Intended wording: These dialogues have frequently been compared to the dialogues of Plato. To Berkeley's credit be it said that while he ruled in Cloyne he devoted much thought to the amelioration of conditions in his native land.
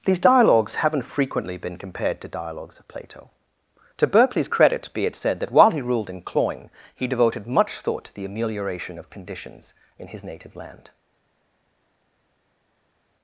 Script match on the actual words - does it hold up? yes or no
no